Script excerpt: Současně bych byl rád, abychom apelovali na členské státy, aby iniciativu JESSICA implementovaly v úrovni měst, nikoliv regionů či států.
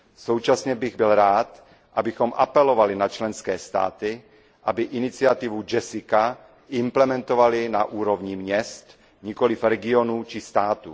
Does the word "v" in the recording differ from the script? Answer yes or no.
yes